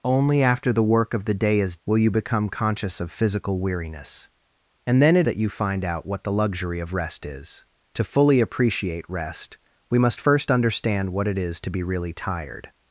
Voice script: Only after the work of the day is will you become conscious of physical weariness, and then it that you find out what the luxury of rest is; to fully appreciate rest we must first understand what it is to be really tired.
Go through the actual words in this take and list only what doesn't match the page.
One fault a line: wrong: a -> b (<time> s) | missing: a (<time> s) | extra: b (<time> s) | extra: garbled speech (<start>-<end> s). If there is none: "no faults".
no faults